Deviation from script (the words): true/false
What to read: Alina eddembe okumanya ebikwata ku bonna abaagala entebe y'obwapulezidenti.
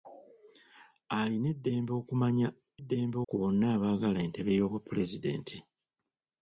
true